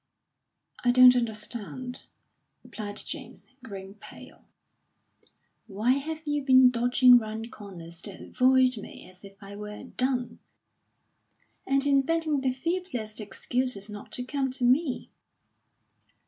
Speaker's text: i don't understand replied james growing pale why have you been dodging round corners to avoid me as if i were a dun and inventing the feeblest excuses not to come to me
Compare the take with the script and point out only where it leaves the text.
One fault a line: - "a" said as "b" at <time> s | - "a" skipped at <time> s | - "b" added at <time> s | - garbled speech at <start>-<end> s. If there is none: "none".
none